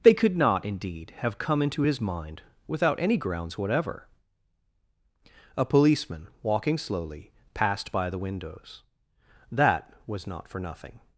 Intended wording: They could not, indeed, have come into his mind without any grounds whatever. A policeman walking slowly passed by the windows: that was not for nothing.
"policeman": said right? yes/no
yes